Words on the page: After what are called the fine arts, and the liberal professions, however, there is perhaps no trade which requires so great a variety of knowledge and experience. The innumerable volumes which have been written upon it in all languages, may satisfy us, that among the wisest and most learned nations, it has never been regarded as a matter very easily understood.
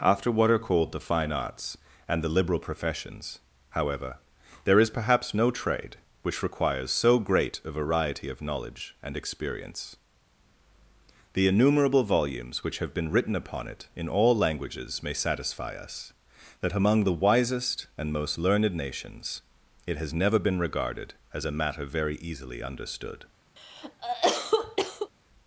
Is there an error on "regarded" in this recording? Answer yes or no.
no